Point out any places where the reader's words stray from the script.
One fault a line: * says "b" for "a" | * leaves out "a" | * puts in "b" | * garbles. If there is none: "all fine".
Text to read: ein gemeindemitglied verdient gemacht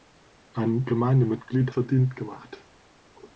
all fine